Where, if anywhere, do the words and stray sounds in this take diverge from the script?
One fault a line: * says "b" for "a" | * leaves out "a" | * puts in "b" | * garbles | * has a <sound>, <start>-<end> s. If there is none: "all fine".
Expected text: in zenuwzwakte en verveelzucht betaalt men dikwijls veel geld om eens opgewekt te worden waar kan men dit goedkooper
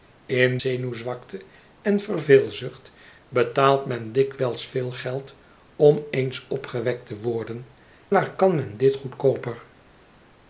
all fine